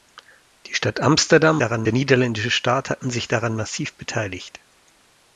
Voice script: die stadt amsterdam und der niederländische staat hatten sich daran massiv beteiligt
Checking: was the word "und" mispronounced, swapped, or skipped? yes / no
yes